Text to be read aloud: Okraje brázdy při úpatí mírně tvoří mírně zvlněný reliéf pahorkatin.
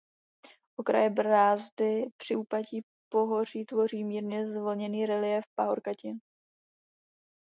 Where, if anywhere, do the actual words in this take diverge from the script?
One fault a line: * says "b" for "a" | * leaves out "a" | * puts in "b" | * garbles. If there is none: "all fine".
* says "pohoří" for "mírně"